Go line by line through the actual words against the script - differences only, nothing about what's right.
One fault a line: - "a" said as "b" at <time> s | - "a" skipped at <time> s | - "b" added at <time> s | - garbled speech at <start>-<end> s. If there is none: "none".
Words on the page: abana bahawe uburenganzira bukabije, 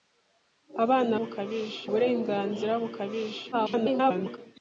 - "bahawe" said as "bukabije" at 1.2 s
- garbled speech at 3.5-4.4 s